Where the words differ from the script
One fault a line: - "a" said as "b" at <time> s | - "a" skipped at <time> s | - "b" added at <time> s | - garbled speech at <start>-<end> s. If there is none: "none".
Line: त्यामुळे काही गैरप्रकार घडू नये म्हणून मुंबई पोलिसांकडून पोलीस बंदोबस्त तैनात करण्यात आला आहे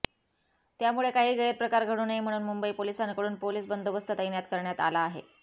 none